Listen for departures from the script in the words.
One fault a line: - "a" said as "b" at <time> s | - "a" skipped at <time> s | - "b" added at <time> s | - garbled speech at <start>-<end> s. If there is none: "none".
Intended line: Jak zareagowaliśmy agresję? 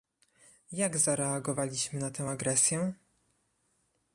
- "na tę" added at 2.0 s